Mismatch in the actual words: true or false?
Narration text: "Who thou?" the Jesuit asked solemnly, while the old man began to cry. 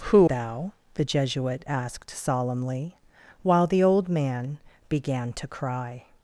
false